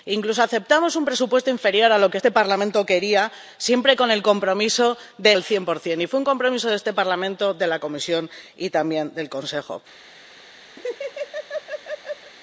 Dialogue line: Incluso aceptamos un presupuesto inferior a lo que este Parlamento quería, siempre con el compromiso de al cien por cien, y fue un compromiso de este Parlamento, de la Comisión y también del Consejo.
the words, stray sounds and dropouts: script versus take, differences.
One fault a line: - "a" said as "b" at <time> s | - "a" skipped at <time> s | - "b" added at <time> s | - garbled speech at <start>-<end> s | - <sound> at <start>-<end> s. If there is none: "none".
- laugh at 10.8-12.3 s